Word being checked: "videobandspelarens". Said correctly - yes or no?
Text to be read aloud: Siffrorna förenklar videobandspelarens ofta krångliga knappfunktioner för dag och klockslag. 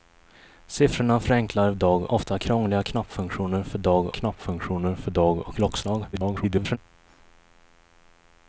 no